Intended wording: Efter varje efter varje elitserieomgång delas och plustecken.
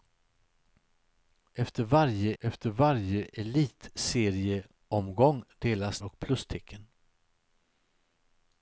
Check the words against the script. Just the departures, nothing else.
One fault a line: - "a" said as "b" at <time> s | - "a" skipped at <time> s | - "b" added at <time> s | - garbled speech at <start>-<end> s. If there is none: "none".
none